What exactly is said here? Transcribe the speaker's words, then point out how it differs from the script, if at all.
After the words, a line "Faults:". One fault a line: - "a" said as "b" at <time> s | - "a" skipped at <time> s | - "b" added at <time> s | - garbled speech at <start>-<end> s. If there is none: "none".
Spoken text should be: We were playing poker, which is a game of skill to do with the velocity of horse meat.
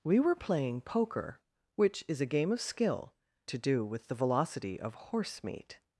We were playing poker, which is a game of skill to do with the velocity of horse meat.
Faults:
none